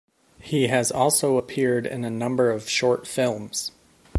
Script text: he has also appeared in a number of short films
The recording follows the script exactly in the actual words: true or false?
true